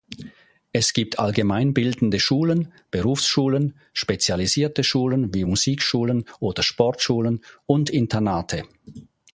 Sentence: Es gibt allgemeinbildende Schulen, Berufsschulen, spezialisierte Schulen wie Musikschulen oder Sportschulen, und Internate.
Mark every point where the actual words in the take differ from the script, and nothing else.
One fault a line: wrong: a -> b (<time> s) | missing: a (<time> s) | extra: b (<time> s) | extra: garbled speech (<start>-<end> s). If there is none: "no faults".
no faults